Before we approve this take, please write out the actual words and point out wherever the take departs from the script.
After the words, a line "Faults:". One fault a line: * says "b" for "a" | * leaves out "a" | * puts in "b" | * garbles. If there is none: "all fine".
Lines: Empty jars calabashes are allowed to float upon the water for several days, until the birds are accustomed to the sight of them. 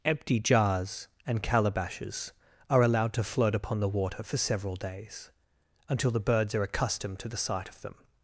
Empty jars and calabashes are allowed to float upon the water for several days, until the birds are accustomed to the sight of them.
Faults:
* puts in "and"